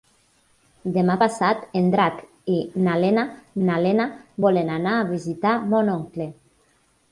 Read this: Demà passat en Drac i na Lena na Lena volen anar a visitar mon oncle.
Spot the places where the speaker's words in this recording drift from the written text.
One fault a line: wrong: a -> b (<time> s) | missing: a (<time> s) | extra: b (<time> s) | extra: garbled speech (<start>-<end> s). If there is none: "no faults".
no faults